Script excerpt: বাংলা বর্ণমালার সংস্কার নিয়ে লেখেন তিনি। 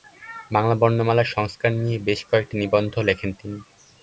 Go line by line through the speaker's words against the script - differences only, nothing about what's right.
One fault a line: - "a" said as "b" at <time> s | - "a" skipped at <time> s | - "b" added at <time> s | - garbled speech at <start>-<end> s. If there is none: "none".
- "বেশ কয়েকটি নিবন্ধ" added at 2.0 s